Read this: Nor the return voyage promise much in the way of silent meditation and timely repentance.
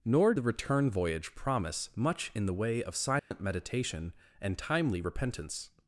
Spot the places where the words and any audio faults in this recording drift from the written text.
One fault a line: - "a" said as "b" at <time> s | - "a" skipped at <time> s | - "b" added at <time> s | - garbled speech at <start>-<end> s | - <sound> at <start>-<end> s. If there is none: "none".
- dropout at 3.2-3.3 s